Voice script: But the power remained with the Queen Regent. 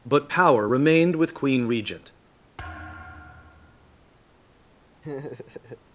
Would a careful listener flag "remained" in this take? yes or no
no